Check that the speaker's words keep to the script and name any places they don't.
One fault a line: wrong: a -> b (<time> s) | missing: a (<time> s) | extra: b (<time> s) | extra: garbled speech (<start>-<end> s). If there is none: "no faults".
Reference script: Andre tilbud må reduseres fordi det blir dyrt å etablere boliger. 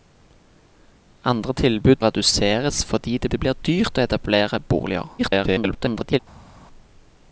missing: må (2.0 s)
extra: det (3.3 s)
extra: garbled speech (5.2-6.2 s)